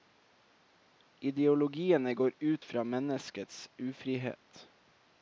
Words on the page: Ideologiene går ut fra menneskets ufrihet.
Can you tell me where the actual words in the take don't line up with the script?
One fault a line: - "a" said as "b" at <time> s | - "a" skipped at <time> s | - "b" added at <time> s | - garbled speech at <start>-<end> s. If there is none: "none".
none